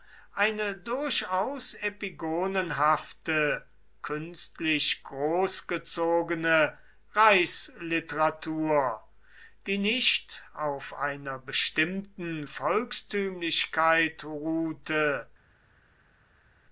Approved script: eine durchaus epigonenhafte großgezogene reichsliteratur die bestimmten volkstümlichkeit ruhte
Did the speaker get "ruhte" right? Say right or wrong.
right